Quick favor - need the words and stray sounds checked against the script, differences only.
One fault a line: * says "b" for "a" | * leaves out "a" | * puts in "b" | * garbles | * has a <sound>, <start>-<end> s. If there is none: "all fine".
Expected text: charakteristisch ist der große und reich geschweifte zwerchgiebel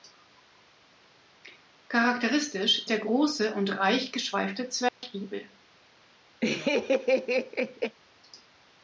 * leaves out "ist"
* has a dropout, 4.9-5.0 s
* has a laugh, 6.4-8.0 s